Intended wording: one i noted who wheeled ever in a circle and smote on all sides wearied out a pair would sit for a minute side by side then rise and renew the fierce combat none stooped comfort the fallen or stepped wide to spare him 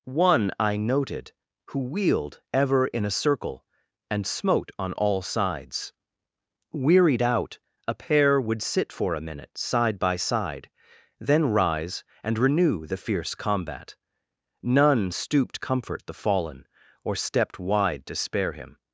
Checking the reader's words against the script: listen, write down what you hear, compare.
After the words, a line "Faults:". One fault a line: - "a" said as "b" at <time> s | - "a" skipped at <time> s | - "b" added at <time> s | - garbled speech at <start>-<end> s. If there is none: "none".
one i noted who wheeled ever in a circle and smote on all sides wearied out a pair would sit for a minute side by side then rise and renew the fierce combat none stooped comfort the fallen or stepped wide to spare him
Faults:
none